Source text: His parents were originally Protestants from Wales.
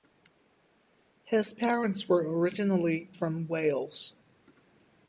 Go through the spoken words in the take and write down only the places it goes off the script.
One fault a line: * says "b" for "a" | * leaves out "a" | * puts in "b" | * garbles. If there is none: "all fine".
* leaves out "Protestants"